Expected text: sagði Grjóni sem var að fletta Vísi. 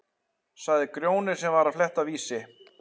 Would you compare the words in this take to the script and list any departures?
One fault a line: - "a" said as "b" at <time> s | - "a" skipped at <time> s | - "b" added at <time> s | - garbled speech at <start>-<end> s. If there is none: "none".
none